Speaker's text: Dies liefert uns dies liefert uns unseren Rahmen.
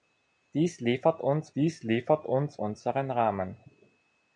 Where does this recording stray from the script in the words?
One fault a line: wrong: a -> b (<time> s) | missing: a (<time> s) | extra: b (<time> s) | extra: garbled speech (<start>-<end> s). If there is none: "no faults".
no faults